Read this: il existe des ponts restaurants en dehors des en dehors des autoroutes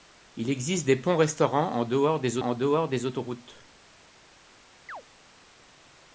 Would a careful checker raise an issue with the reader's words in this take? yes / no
no